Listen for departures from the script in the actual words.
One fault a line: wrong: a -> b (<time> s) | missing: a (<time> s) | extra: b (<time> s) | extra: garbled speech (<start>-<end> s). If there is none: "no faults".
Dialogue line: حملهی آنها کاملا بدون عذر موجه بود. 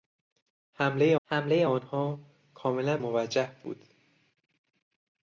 extra: حملهی (1.2 s)
missing: بدون عذر (3.0 s)